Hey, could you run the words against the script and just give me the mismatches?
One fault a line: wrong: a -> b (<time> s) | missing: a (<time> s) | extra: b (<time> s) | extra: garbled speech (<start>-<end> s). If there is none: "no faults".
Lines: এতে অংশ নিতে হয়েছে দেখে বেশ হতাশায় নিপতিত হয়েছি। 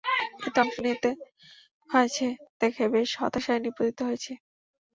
no faults